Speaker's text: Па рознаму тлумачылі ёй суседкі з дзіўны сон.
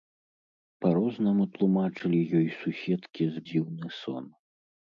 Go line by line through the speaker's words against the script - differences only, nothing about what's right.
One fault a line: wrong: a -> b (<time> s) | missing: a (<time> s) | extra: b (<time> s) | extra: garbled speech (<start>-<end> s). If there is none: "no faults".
no faults